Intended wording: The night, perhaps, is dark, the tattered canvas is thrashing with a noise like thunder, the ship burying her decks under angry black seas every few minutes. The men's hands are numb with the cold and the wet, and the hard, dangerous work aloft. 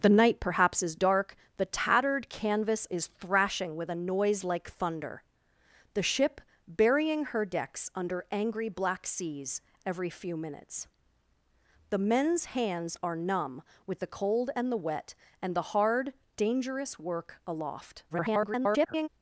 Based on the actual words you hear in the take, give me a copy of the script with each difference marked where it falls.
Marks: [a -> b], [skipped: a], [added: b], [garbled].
The night, perhaps, is dark, the tattered canvas is thrashing with a noise like thunder, the ship burying her decks under angry black seas every few minutes. The men's hands are numb with the cold and the wet, and the hard, dangerous work aloft. [garbled]